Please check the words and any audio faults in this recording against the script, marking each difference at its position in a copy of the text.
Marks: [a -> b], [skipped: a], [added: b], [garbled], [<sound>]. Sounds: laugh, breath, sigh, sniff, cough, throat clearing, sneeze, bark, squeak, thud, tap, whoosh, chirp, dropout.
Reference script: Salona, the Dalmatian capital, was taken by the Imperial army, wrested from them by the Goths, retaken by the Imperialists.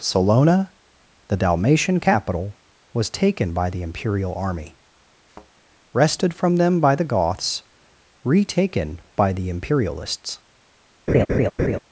Salona, the Dalmatian capital, was taken by the Imperial army, [thud] wrested from them by the Goths, retaken by the Imperialists. [laugh]